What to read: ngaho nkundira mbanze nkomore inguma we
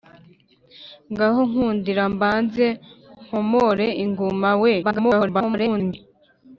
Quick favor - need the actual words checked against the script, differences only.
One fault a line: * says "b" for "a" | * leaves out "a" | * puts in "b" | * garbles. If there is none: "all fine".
* garbles